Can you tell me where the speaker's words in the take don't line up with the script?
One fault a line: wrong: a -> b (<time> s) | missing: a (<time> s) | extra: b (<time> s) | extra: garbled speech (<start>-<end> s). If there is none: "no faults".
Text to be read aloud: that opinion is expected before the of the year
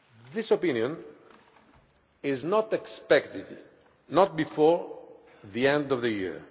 wrong: that -> this (0.3 s)
extra: not (2.4 s)
extra: end (5.7 s)